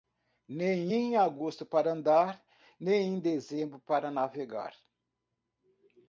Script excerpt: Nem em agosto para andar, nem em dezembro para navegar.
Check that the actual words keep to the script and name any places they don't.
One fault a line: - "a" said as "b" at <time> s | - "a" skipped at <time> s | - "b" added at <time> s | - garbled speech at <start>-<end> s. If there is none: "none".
none